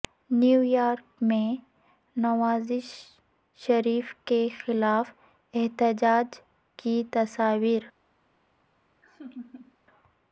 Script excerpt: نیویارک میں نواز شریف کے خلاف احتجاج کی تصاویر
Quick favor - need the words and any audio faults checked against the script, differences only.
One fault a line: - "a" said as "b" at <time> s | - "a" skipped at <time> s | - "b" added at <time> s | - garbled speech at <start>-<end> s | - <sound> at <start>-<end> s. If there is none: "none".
- laugh at 9.0-9.8 s